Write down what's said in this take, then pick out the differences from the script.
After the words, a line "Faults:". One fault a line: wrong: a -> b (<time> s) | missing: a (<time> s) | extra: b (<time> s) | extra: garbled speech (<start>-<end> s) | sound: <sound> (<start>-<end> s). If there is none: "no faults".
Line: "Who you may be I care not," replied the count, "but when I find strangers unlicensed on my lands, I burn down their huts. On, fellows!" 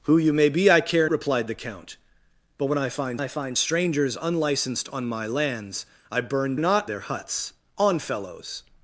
"Who you may be I care," replied the count, "but when I find I find strangers unlicensed on my lands, I burn not their huts. On, fellows!"
Faults:
missing: not (1.1 s)
extra: I find (3.2 s)
wrong: down -> not (6.6 s)